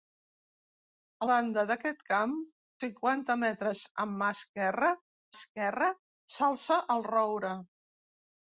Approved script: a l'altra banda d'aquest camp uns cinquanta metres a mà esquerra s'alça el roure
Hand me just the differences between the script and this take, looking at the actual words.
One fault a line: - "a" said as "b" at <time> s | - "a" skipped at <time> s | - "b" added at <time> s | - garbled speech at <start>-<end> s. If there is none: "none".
- "l'altra" skipped at 1.3 s
- "uns" skipped at 2.4 s
- "esquerra" added at 5.4 s